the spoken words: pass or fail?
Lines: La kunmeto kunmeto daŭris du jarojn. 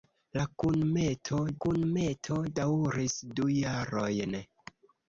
pass